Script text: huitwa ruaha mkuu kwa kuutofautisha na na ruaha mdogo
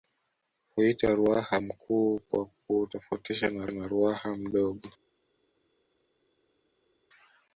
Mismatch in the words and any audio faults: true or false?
false